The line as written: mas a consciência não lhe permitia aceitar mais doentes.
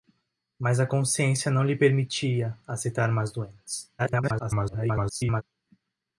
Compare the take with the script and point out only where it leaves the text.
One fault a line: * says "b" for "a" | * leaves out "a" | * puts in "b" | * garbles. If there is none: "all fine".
* garbles